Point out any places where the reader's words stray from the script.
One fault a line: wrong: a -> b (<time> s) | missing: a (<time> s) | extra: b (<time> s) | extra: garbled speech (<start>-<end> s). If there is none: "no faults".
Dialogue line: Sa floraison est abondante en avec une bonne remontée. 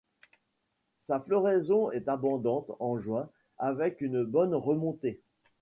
extra: juin (3.0 s)